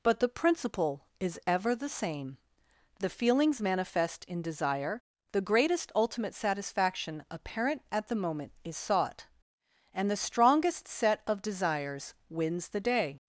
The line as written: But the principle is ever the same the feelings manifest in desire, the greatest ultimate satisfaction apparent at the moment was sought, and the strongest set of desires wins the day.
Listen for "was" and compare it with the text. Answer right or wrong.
wrong